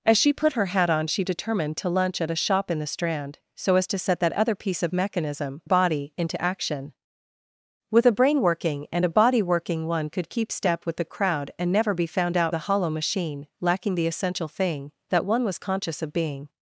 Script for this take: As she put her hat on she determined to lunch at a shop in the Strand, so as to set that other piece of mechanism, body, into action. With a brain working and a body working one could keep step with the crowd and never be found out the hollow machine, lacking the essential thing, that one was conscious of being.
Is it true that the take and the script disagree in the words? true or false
false